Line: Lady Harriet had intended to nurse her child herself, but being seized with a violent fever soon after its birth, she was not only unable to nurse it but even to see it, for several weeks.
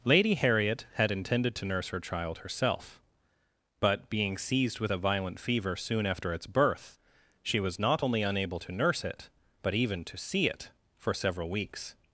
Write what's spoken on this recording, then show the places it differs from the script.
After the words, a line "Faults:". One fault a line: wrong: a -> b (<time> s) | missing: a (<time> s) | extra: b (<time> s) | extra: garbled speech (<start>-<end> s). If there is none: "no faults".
Lady Harriet had intended to nurse her child herself, but being seized with a violent fever soon after its birth, she was not only unable to nurse it but even to see it, for several weeks.
Faults:
no faults